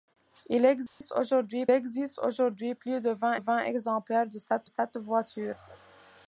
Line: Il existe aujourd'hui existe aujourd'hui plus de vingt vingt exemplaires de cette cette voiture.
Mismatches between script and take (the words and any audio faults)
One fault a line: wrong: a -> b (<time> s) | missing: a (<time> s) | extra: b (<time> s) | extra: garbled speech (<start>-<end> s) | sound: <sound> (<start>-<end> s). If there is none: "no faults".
sound: dropout (0.9-1.0 s)